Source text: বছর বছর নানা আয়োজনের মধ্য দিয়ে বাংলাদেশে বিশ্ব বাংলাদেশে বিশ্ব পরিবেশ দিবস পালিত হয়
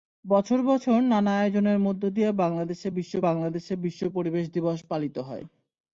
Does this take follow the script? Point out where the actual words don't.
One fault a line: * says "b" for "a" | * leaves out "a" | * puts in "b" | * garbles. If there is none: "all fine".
all fine